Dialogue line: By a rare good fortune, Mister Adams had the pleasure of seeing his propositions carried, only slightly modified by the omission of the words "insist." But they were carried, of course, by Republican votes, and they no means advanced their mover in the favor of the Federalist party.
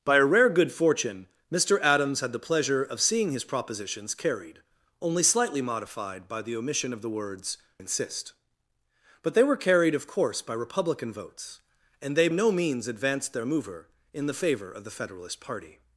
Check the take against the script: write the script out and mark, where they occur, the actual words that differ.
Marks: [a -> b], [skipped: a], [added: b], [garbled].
By a rare good fortune, Mister Adams had the pleasure of seeing his propositions carried, only slightly modified by the omission of the words "insist." But they were carried, of course, by Republican votes, and they no means advanced their mover in the favor of the Federalist party.